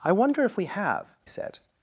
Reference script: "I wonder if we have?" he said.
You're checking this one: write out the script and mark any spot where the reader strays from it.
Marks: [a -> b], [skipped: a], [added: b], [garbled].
"I wonder if we have?" [skipped: he] said.